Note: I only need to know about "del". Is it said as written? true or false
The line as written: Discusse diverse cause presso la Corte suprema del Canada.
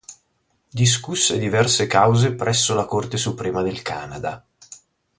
true